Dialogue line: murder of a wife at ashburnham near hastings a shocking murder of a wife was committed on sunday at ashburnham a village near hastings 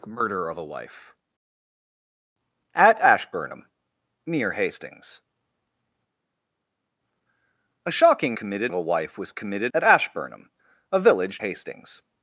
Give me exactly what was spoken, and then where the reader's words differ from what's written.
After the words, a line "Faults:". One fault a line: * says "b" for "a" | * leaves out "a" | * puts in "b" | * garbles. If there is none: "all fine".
murder of a wife at ashburnham near hastings a shocking committed of a wife was committed at ashburnham a village hastings
Faults:
* says "committed" for "murder"
* leaves out "on sunday"
* leaves out "near"